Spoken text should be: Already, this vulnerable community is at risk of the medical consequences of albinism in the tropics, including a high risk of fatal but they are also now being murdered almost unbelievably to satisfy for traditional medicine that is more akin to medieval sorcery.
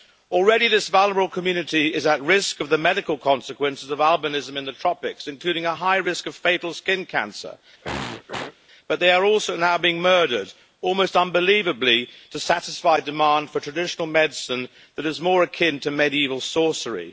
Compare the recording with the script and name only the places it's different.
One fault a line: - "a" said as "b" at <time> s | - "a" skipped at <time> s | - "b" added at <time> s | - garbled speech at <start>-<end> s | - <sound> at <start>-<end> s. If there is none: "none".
- "skin cancer" added at 6.7 s
- throat clearing at 7.8-8.6 s
- "demand" added at 13.0 s